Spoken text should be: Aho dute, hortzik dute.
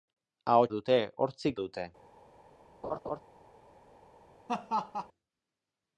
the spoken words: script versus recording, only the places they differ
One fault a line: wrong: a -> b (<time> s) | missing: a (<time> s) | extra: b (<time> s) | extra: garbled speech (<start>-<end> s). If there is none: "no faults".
no faults